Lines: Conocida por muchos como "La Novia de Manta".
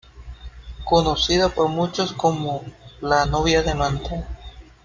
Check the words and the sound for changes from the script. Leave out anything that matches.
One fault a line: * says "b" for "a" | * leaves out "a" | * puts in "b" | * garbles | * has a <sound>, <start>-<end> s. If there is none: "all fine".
all fine